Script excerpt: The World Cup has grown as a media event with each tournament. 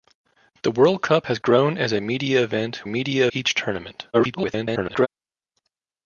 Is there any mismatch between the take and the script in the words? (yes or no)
yes